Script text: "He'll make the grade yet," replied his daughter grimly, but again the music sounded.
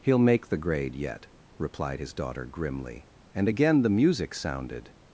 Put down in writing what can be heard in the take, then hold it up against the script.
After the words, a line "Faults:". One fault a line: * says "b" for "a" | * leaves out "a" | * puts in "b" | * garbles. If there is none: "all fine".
"He'll make the grade yet," replied his daughter grimly, and again the music sounded.
Faults:
* says "and" for "but"